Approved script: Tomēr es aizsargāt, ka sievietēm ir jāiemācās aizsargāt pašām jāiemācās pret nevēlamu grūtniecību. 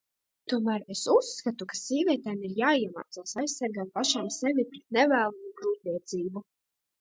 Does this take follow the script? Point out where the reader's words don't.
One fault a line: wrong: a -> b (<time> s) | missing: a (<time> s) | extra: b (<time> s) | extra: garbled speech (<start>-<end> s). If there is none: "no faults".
wrong: aizsargāt -> uzskatu (1.1 s)
wrong: jāiemācās -> sevi (4.4 s)